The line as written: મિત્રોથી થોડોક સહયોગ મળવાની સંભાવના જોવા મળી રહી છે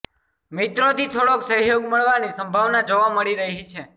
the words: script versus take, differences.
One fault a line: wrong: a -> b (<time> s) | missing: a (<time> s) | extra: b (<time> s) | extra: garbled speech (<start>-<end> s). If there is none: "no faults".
no faults